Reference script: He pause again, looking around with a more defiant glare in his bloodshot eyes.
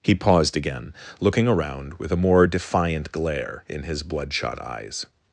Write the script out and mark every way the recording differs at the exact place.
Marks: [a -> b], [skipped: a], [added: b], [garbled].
He [pause -> paused] again, looking around with a more defiant glare in his bloodshot eyes.